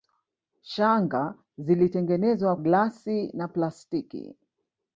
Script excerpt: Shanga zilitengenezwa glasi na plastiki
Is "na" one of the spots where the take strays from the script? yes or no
no